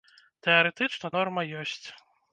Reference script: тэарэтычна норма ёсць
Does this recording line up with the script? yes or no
yes